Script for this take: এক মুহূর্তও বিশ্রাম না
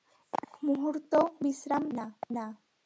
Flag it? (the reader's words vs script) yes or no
no